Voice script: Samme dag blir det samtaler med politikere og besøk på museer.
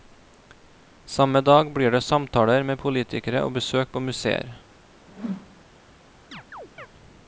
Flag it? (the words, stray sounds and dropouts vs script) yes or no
yes